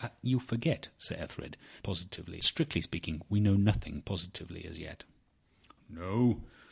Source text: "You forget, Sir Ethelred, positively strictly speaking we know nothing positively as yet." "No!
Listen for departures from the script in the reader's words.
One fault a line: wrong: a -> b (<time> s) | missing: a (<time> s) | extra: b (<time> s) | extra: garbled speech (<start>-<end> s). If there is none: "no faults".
no faults